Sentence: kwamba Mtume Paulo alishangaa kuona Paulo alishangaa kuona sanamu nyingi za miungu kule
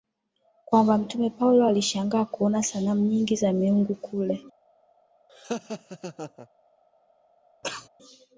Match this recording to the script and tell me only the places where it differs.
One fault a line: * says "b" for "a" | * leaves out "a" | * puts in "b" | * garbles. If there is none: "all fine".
* leaves out "Paulo alishangaa kuona"